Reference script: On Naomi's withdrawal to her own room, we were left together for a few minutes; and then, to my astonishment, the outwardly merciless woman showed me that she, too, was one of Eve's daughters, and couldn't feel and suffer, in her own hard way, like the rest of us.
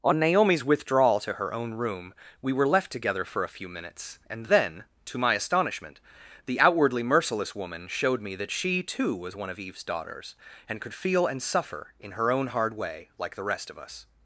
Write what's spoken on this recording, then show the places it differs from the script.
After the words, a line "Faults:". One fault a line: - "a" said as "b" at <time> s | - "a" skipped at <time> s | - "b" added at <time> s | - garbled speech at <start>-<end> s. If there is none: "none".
On Naomi's withdrawal to her own room, we were left together for a few minutes; and then, to my astonishment, the outwardly merciless woman showed me that she, too, was one of Eve's daughters, and could feel and suffer, in her own hard way, like the rest of us.
Faults:
- "couldn't" said as "could" at 10.8 s